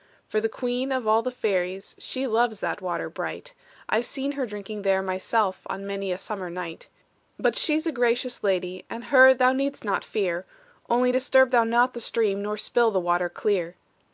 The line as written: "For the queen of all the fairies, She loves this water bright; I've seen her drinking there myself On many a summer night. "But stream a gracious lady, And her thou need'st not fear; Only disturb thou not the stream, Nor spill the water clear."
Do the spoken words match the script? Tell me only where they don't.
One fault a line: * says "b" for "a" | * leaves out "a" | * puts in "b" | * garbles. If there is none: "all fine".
* says "that" for "this"
* says "she's" for "stream"